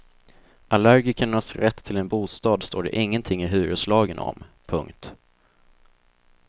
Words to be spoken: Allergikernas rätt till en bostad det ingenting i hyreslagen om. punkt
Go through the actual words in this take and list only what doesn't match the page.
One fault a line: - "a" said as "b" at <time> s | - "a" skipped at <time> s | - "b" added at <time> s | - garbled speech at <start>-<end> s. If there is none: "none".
- "står" added at 2.6 s